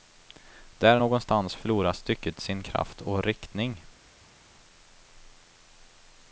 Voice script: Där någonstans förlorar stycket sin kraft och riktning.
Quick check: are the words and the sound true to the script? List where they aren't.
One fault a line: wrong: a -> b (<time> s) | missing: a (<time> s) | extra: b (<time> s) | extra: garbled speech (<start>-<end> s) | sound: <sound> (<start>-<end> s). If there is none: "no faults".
no faults